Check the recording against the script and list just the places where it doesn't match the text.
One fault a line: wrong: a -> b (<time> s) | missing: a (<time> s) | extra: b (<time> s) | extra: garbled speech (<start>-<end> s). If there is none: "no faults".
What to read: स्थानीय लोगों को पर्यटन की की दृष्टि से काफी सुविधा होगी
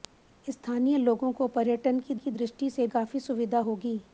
no faults